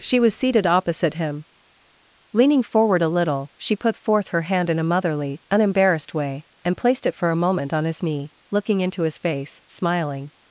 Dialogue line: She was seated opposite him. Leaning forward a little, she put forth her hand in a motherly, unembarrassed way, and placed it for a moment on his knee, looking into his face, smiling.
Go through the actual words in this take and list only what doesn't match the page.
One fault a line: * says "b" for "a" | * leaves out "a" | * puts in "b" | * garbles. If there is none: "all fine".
all fine